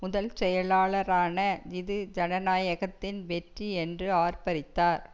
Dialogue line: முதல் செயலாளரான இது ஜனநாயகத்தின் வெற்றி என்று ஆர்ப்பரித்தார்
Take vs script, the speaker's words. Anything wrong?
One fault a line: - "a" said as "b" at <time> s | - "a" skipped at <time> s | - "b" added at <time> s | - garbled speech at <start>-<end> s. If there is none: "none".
none